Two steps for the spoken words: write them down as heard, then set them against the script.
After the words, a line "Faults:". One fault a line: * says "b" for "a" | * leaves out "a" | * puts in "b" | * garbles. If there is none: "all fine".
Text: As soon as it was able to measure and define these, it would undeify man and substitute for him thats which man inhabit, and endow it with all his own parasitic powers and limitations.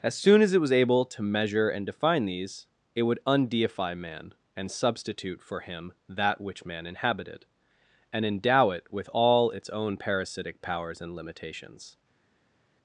As soon as it was able to measure and define these, it would undeify man and substitute for him that which man inhabited, and endow it with all its own parasitic powers and limitations.
Faults:
* says "that" for "thats"
* says "inhabited" for "inhabit"
* says "its" for "his"